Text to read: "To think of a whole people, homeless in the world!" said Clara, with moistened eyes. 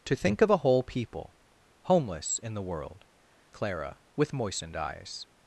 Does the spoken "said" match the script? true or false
false